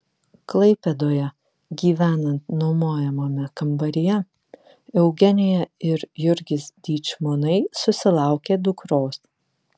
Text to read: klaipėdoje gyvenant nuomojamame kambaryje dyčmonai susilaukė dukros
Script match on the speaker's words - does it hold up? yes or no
no